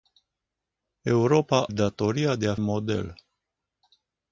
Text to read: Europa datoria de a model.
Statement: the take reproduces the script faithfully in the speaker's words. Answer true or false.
true